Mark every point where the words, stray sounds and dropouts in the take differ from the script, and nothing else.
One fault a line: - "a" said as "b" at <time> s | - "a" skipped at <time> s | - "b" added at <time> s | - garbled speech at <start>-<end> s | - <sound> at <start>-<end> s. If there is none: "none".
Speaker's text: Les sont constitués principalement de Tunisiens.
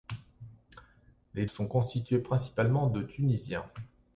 none